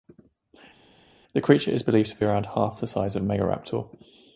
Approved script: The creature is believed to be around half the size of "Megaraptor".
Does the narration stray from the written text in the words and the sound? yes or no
no